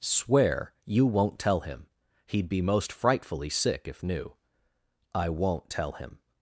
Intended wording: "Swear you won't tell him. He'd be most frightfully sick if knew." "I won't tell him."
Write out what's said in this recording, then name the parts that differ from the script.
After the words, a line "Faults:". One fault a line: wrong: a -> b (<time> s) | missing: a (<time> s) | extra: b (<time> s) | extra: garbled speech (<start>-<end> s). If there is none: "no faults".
"Swear you won't tell him. He'd be most frightfully sick if knew." "I won't tell him."
Faults:
no faults